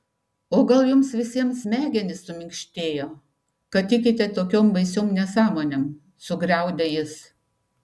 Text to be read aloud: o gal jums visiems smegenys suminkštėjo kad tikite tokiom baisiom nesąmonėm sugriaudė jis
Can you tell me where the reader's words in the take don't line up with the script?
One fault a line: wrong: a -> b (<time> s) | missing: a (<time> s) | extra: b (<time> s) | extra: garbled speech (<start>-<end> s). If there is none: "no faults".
no faults